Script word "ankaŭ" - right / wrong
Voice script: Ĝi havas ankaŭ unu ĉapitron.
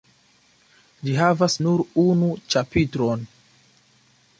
wrong